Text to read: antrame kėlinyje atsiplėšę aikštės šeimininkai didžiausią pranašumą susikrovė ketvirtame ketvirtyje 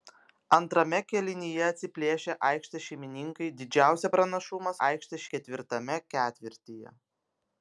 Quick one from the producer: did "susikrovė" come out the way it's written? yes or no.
no